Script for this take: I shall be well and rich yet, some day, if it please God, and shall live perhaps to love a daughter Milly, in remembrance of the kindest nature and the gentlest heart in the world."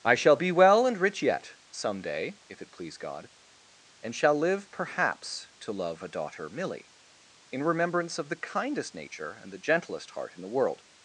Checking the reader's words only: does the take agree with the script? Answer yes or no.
yes